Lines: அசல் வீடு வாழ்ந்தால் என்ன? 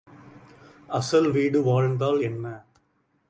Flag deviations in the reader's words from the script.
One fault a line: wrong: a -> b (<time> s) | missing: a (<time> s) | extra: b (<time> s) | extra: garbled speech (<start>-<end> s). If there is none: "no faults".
no faults